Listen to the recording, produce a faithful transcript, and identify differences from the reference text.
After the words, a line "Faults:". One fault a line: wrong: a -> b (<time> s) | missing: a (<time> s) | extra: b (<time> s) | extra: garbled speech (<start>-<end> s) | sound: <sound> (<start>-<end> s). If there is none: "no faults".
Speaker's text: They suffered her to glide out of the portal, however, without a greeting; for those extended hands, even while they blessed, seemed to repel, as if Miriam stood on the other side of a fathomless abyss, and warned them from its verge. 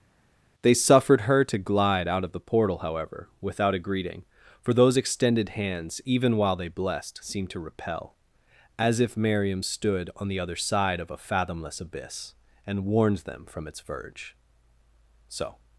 They suffered her to glide out of the portal, however, without a greeting; for those extended hands, even while they blessed, seemed to repel, as if Miriam stood on the other side of a fathomless abyss, and warned them from its verge. So
Faults:
extra: So (15.3 s)